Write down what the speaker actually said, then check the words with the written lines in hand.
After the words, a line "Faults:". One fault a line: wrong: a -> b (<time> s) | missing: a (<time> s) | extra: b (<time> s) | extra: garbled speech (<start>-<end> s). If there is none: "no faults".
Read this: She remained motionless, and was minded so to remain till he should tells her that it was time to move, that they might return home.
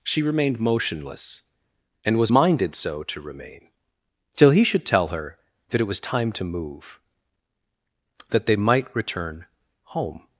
She remained motionless, and was minded so to remain till he should tell her that it was time to move, that they might return home.
Faults:
wrong: tells -> tell (4.8 s)